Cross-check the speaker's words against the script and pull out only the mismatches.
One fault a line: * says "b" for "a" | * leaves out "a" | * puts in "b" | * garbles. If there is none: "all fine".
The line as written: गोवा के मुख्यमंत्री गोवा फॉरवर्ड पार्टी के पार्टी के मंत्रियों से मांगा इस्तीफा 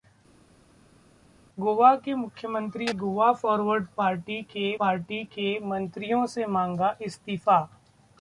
all fine